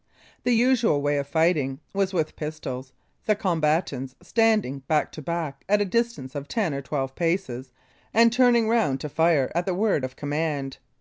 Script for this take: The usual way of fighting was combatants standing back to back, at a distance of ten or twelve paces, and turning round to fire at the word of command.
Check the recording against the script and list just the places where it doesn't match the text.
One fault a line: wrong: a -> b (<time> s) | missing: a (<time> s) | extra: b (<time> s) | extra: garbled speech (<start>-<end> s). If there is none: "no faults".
extra: with pistols the (2.1 s)